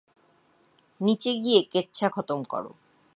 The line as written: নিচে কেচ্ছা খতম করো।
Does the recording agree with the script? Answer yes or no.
no